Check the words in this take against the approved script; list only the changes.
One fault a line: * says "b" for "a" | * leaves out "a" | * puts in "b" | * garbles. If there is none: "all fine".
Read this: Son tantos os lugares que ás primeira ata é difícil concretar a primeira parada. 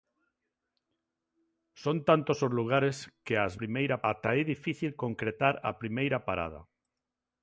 all fine